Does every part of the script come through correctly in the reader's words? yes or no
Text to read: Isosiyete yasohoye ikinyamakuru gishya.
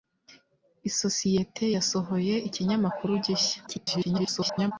no